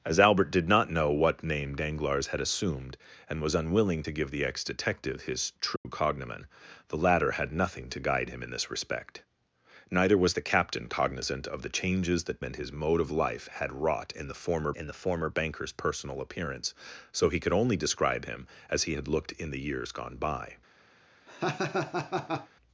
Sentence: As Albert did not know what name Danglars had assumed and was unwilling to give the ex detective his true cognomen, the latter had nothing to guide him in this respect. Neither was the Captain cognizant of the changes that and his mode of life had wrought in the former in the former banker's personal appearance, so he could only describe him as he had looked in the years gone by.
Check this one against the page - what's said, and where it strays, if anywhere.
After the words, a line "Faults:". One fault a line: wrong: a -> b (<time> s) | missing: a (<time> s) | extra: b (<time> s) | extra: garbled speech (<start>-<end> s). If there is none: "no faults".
As Albert did not know what name Danglars had assumed and was unwilling to give the ex detective his true cognomen, the latter had nothing to guide him in this respect. Neither was the Captain cognizant of the changes that and his mode of life had wrought in the former in the former banker's personal appearance, so he could only describe him as he had looked in the years gone by.
Faults:
no faults